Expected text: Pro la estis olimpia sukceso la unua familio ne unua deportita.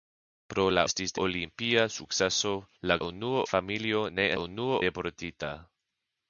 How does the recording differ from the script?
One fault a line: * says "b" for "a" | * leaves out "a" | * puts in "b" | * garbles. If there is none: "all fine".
all fine